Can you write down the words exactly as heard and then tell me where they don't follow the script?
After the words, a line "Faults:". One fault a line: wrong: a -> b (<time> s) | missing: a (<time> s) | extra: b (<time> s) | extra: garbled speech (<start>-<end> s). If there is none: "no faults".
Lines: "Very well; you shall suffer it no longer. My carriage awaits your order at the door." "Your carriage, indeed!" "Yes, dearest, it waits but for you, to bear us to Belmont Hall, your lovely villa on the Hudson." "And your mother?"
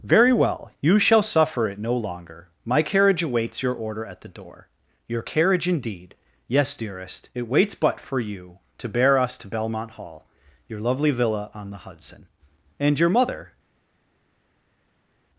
"Very well; you shall suffer it no longer. My carriage awaits your order at the door." "Your carriage, indeed!" "Yes, dearest, it waits but for you, to bear us to Belmont Hall, your lovely villa on the Hudson." "And your mother?"
Faults:
no faults